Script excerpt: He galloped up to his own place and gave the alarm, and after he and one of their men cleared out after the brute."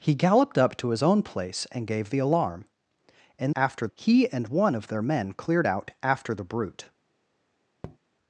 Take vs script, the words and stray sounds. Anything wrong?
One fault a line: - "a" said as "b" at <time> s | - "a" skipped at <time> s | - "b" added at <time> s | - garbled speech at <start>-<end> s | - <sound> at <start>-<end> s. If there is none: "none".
- tap at 7.8-8.0 s